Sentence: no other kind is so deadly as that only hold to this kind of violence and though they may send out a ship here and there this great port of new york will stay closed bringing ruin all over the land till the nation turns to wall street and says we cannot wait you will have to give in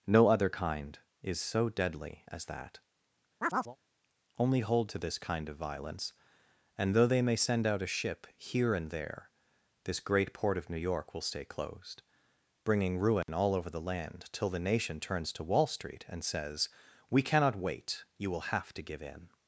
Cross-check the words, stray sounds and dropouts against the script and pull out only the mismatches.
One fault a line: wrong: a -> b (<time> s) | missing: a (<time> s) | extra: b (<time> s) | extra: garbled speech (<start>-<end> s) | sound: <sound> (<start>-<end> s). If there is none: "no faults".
sound: chirp (3.4-3.8 s)
sound: dropout (13.2-13.3 s)